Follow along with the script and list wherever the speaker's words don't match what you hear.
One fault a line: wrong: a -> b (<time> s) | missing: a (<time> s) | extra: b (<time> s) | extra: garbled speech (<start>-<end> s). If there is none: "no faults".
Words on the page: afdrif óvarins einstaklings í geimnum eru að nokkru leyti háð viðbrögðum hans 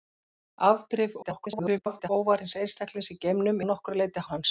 extra: garbled speech (1.2-2.1 s)
missing: eru (3.6 s)
missing: háð viðbrögðum (4.2 s)